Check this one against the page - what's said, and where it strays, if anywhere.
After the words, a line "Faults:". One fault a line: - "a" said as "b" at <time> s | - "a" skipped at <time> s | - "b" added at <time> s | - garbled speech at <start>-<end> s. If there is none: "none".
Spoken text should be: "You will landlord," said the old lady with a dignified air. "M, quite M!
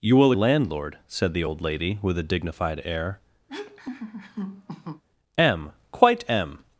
"You will landlord," said the old lady with a dignified air. "M, quite M!
Faults:
none